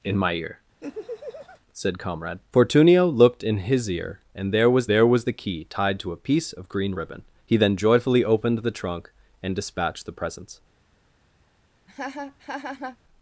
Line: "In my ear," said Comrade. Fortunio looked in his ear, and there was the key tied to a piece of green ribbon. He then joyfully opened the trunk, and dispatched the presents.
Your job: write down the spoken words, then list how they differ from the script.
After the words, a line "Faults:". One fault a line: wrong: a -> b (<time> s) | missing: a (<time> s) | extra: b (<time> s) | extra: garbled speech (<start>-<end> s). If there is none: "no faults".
"In my ear," said Comrade. Fortunio looked in his ear, and there was there was the key tied to a piece of green ribbon. He then joyfully opened the trunk, and dispatched the presents.
Faults:
extra: there was (4.9 s)